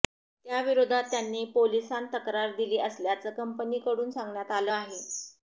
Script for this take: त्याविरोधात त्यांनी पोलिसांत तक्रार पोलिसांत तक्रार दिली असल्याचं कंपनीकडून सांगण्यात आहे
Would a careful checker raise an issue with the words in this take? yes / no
yes